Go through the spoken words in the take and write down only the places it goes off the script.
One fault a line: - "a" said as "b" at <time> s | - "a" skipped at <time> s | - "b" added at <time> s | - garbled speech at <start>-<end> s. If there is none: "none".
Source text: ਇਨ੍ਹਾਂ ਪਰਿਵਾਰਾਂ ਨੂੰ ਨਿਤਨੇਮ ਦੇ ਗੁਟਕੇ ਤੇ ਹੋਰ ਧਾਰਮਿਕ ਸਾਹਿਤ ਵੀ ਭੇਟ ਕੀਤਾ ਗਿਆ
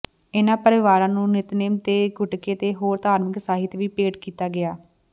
none